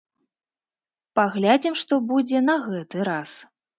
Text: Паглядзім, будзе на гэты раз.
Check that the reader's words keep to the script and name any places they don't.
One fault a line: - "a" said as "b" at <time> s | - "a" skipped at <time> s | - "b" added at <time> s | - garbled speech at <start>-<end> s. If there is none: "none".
- "што" added at 1.8 s